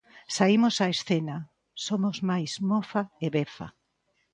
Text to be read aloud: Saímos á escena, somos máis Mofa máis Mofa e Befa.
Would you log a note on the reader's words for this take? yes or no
yes